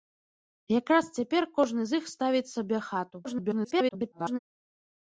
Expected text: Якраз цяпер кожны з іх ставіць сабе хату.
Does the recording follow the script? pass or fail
fail